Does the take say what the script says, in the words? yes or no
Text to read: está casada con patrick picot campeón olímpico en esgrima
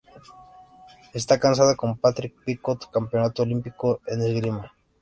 yes